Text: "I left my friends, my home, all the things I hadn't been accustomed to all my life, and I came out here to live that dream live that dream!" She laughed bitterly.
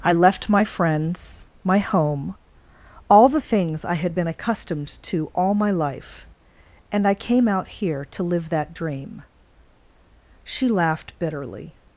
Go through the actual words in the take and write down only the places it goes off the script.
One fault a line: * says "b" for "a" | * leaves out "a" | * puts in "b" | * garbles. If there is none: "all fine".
* says "had" for "hadn't"
* leaves out "live that dream"